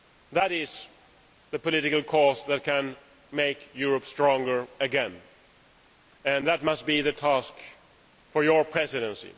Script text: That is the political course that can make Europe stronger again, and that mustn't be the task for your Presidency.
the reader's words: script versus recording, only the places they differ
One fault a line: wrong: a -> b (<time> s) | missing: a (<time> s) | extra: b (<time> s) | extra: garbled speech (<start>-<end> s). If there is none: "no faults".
wrong: mustn't -> must (6.6 s)